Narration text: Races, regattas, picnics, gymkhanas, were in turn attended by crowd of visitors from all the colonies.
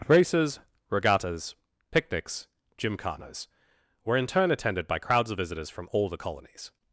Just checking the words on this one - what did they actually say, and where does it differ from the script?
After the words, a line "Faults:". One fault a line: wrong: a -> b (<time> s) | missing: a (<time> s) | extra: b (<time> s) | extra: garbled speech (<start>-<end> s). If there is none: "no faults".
Races, regattas, picnics, gymkhanas, were in turn attended by crowds of visitors from all the colonies.
Faults:
wrong: crowd -> crowds (5.0 s)